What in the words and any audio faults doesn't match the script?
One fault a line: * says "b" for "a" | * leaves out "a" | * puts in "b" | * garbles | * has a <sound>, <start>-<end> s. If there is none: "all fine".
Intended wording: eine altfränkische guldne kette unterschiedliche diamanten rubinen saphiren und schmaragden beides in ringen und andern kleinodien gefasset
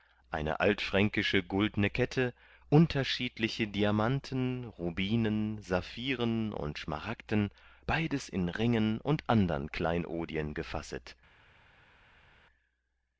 all fine